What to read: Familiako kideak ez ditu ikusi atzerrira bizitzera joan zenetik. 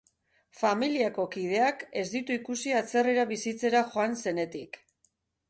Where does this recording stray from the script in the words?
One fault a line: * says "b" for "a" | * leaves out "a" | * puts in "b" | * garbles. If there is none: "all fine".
all fine